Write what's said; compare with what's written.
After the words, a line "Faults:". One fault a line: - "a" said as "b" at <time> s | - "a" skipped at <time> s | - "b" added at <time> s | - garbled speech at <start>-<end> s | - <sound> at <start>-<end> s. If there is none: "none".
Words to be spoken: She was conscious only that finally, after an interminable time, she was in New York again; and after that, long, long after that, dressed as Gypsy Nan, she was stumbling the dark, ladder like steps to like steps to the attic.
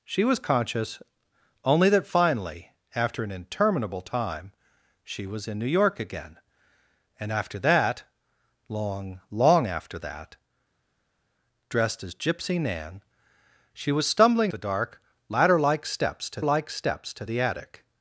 She was conscious only that finally, after an interminable time, she was in New York again; and after that, long, long after that, dressed as Gypsy Nan, she was stumbling the dark, ladder like steps to like steps to the attic.
Faults:
none